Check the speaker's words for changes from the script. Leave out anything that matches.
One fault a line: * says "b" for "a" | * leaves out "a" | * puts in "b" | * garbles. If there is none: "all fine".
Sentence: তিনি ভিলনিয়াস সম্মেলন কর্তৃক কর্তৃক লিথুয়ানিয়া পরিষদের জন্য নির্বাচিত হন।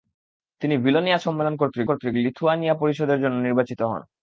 all fine